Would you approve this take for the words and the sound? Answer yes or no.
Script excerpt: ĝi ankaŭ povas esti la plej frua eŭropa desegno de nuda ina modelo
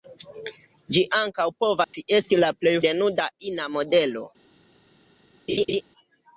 no